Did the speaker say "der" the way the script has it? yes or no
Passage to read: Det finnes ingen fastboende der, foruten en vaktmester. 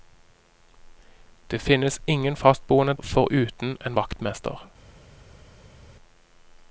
no